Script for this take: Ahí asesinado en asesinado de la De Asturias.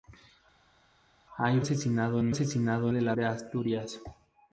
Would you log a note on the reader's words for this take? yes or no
no